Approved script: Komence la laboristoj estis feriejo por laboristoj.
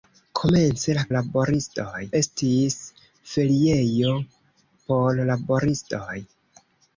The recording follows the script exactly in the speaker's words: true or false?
true